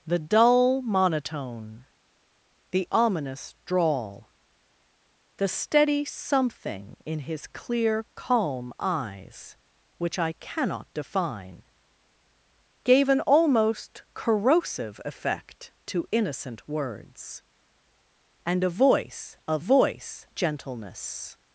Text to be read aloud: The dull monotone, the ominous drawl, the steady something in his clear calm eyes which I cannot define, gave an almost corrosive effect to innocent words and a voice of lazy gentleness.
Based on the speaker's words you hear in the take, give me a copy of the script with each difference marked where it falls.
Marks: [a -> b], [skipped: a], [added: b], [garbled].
The dull monotone, the ominous drawl, the steady something in his clear calm eyes which I cannot define, gave an almost corrosive effect to innocent words and a voice of [lazy -> voice] gentleness.